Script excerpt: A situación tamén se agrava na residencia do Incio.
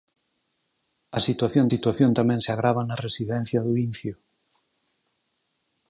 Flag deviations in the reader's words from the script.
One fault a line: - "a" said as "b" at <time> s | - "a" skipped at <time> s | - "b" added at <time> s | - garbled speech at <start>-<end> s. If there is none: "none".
- "situación" added at 1.7 s